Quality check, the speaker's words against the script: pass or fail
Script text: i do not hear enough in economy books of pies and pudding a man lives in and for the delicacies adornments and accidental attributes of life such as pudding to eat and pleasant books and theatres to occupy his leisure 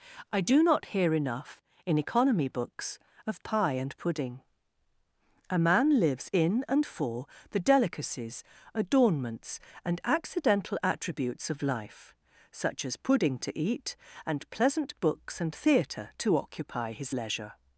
fail